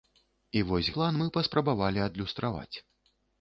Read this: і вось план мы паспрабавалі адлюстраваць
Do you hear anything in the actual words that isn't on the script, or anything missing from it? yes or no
no